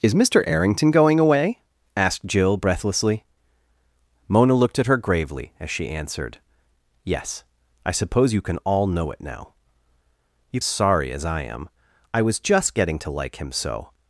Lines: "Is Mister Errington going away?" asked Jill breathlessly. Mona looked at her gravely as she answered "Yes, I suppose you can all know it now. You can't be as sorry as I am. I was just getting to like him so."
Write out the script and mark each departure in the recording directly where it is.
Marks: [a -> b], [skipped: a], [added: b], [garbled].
"Is Mister Errington going away?" asked Jill breathlessly. Mona looked at her gravely as she answered "Yes, I suppose you can all know it now. You [skipped: can't be] as sorry as I am. I was just getting to like him so."